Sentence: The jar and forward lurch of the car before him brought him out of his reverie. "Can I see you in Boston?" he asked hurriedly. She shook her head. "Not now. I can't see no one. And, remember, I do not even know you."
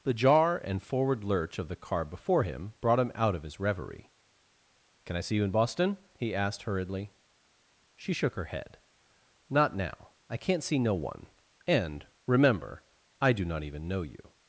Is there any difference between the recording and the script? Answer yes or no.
no